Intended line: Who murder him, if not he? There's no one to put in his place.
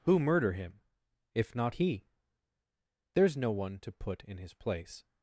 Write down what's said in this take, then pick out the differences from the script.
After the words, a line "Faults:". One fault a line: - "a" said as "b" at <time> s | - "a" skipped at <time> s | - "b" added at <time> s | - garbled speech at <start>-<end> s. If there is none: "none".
Who murder him, if not he? There's no one to put in his place.
Faults:
none